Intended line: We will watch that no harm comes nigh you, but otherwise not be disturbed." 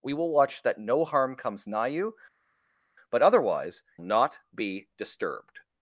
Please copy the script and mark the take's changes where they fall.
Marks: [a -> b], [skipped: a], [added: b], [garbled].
We will watch that no harm comes nigh you, but otherwise not be disturbed."